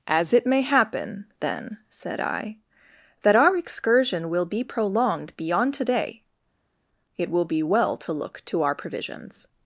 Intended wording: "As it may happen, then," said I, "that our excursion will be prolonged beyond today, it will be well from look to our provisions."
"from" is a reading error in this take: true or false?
true